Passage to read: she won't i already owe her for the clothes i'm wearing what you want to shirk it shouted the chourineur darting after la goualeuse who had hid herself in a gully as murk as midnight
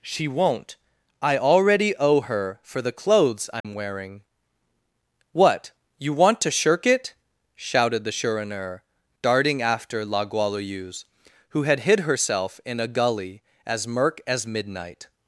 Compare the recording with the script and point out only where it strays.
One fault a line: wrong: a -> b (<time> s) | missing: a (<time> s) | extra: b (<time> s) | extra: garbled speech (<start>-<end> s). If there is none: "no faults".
no faults